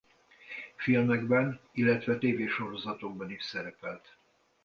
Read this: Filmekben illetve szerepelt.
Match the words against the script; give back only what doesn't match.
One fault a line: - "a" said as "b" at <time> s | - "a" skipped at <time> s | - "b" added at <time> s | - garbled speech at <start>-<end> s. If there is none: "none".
- "tévésorozatokban is" added at 2.2 s